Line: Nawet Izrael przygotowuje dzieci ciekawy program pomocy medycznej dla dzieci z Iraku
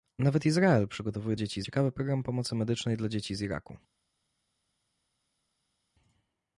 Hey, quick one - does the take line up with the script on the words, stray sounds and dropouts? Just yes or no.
yes